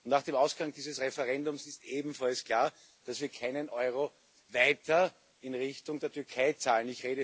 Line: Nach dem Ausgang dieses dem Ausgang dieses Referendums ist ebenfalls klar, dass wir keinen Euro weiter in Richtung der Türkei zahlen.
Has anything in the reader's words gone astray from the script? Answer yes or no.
yes